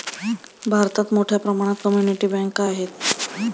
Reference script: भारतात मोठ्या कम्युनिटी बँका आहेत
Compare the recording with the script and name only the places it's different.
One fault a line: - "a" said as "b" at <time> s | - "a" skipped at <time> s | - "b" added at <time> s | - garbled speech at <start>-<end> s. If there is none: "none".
- "प्रमाणात" added at 1.4 s